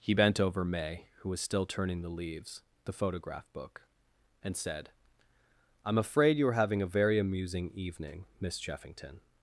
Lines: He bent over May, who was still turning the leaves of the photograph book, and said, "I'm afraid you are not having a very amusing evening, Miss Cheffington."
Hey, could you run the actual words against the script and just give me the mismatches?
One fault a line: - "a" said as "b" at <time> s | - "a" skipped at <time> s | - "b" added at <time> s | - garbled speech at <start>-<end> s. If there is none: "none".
- "of" skipped at 2.6 s
- "not" skipped at 6.5 s